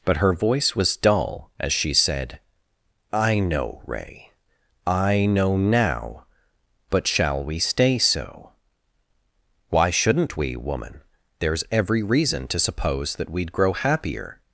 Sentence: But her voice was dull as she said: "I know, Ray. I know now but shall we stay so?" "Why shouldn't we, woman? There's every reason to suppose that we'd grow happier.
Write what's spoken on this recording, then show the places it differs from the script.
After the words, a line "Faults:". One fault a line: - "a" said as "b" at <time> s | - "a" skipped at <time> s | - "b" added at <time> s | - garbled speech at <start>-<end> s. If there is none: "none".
But her voice was dull as she said: "I know, Ray. I know now but shall we stay so?" "Why shouldn't we, woman? There's every reason to suppose that we'd grow happier.
Faults:
none